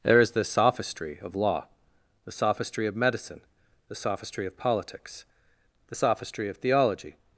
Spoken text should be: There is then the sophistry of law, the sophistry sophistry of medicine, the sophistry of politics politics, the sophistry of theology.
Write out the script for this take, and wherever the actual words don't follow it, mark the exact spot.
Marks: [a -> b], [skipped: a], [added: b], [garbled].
There is [skipped: then] the sophistry of law, the sophistry [skipped: sophistry] of medicine, the sophistry of politics [skipped: politics,] the sophistry of theology.